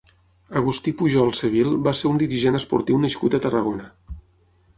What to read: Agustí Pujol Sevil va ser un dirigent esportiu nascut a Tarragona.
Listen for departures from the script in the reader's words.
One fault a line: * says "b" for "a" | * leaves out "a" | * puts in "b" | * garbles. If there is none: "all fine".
all fine